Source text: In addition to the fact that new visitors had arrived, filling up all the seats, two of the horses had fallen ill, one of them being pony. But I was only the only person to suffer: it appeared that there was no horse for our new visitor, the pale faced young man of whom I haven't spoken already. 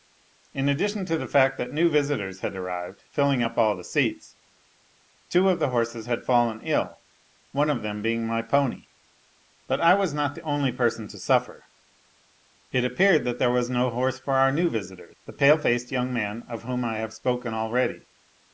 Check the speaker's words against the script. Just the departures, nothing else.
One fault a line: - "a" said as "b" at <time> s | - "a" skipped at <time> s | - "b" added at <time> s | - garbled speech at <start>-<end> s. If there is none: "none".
- "my" added at 8.3 s
- "only" said as "not" at 10.1 s
- "haven't" said as "have" at 17.0 s